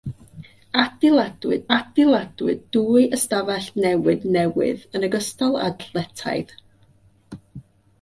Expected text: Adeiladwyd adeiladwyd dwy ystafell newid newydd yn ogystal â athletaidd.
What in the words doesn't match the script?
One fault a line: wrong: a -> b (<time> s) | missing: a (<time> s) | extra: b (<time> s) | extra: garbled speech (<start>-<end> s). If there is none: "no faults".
no faults